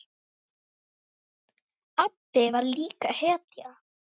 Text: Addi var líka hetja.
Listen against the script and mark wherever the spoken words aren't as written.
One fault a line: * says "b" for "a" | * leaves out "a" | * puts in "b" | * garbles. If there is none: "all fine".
all fine